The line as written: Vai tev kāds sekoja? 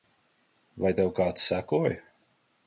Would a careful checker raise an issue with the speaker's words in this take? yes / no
no